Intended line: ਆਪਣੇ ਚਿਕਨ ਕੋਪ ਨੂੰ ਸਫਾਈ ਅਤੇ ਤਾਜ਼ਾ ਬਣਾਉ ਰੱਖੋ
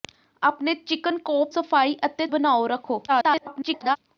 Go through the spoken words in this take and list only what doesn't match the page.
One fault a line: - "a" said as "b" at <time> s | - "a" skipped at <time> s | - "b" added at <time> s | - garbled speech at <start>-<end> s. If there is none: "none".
- "ਨੂੰ" skipped at 1.5 s
- "ਤਾਜ਼ਾ" skipped at 2.3 s
- garbled speech at 3.1-4.0 s